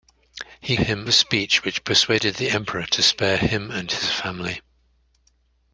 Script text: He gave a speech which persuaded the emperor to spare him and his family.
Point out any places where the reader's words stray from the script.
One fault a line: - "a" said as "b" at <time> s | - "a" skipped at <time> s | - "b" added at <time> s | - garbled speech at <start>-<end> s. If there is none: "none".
- "gave" said as "him" at 0.8 s